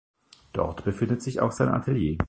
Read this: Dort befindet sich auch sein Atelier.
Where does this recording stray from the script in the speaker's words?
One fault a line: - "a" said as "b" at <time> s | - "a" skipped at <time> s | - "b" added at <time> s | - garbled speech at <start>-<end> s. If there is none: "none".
none